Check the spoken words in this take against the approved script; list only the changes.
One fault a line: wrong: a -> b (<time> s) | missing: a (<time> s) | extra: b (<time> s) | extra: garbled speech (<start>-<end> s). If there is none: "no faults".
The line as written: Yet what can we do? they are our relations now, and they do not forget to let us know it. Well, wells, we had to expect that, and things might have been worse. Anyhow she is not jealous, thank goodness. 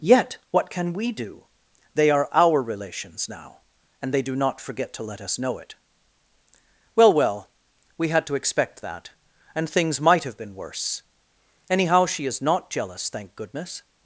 wrong: wells -> well (7.1 s)